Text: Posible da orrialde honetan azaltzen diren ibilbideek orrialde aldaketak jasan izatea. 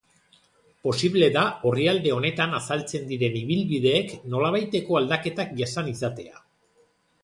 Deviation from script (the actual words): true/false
true